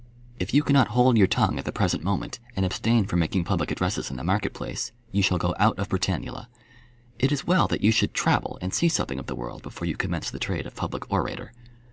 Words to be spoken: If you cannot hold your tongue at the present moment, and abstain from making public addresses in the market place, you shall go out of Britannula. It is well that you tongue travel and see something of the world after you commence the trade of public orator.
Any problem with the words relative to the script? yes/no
yes